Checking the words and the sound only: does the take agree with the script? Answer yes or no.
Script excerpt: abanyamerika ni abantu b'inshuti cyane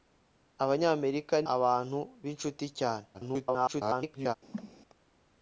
no